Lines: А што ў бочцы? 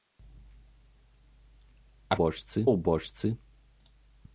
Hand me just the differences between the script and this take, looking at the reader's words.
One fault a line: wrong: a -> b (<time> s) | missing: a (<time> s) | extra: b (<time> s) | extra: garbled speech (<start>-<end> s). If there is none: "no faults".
wrong: што -> бочцы (2.2 s)